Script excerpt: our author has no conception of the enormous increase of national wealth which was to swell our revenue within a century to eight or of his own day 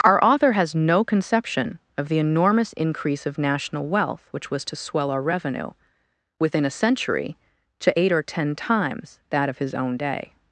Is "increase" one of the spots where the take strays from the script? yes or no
no